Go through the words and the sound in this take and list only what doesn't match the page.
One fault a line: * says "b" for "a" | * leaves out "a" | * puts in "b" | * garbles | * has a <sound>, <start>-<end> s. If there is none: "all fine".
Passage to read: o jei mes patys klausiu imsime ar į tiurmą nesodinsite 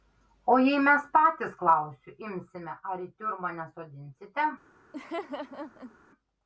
* has a laugh, 4.9-6.0 s